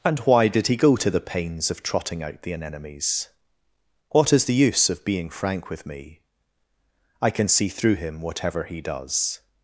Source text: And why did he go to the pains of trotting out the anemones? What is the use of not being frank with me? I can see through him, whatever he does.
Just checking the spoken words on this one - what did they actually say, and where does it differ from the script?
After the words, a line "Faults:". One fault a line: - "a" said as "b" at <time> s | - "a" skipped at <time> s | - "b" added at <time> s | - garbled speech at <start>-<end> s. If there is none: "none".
And why did he go to the pains of trotting out the anemones? What is the use of being frank with me? I can see through him, whatever he does.
Faults:
- "not" skipped at 5.0 s